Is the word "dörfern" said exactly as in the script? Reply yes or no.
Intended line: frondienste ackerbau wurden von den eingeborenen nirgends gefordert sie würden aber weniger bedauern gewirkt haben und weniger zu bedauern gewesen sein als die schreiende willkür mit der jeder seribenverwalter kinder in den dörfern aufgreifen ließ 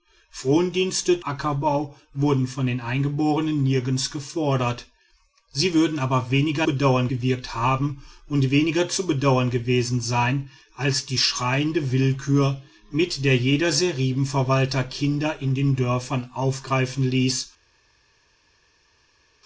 yes